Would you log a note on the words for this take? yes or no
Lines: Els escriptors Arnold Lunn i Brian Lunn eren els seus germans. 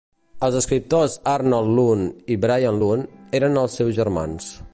no